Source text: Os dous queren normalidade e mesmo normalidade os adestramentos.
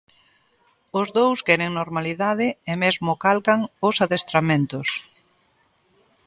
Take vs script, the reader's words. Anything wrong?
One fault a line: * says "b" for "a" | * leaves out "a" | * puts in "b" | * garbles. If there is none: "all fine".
* says "calcan" for "normalidade"